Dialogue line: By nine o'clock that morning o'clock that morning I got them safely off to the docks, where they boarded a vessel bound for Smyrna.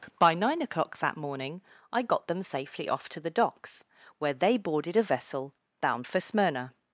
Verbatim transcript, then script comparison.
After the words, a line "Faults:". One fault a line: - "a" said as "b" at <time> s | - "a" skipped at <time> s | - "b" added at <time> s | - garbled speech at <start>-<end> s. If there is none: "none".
By nine o'clock that morning I got them safely off to the docks, where they boarded a vessel bound for Smyrna.
Faults:
- "o'clock that morning" skipped at 1.6 s